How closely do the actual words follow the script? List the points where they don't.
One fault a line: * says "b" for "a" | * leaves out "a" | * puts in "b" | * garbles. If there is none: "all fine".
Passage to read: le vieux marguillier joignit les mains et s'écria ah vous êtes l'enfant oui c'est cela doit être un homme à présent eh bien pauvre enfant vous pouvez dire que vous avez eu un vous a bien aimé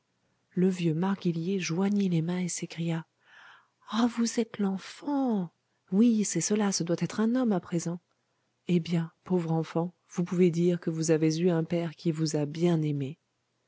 * puts in "ce"
* puts in "père qui"